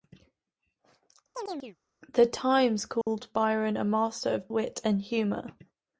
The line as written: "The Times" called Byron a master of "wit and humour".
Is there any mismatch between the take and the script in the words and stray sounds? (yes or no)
yes